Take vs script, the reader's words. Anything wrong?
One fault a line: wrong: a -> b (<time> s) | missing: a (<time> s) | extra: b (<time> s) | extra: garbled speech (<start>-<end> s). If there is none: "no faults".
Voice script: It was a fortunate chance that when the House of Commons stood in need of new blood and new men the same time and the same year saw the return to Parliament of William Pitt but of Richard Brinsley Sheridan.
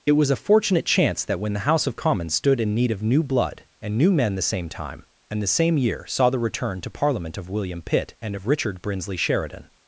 wrong: but -> and (8.2 s)